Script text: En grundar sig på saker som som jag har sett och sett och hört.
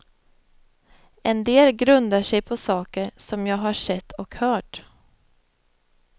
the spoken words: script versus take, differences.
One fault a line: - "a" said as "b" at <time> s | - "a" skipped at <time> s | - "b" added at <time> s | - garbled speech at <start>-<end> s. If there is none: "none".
- "del" added at 1.4 s
- "som" skipped at 3.5 s
- "sett och" skipped at 4.3 s